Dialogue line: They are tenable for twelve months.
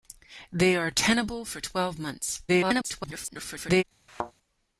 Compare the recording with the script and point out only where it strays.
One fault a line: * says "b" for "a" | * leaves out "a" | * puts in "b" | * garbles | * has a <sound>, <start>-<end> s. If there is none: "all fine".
* garbles
* has a thud, 4.1-4.3 s